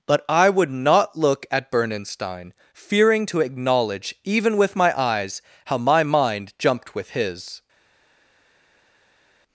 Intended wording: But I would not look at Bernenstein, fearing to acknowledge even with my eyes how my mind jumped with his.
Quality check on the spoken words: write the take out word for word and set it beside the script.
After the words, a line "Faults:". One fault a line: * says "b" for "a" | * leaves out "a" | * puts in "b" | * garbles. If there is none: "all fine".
But I would not look at Bernenstein, fearing to acknowledge even with my eyes how my mind jumped with his.
Faults:
all fine